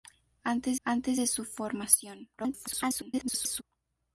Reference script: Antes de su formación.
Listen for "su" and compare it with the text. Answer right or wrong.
right